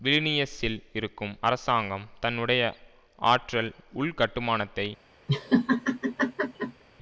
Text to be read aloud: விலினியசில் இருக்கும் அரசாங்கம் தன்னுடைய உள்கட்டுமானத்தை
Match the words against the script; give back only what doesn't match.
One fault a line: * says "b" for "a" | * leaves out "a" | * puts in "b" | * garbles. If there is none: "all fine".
* puts in "ஆற்றல்"